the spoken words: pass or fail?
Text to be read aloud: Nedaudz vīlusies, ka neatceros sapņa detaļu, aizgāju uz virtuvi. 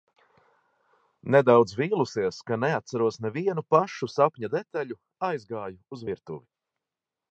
fail